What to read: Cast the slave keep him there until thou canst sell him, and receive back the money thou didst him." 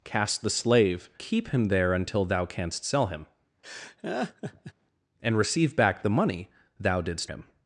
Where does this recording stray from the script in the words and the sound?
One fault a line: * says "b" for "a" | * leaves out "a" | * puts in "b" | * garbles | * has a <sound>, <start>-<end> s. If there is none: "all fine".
* has a laugh, 3.6-4.7 s